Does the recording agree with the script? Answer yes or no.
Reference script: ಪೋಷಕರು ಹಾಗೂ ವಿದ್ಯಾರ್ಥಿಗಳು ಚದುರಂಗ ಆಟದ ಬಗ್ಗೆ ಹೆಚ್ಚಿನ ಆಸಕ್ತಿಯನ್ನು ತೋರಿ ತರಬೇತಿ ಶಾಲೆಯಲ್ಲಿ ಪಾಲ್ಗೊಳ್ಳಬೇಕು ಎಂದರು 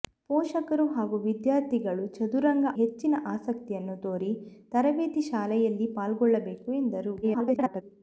no